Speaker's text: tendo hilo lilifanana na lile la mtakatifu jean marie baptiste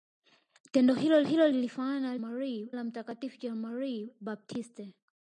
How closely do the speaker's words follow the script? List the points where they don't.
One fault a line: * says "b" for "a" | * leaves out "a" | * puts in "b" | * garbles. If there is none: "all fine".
* puts in "hilo"
* says "marie" for "lile"